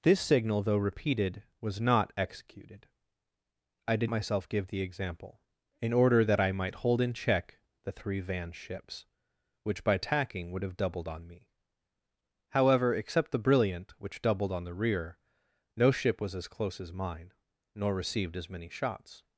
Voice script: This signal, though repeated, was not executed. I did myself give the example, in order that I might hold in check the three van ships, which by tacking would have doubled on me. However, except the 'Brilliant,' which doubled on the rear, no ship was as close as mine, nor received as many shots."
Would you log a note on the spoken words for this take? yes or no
no